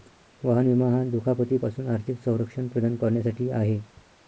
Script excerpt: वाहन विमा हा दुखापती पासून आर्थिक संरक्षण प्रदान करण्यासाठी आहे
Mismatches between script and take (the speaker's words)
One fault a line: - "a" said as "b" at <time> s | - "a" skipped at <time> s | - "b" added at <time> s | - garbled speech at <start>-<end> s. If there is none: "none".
none